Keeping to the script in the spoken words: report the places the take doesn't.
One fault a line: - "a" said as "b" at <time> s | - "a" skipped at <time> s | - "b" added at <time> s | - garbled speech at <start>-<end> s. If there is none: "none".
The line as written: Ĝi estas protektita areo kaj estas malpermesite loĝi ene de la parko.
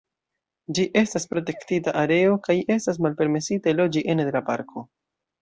none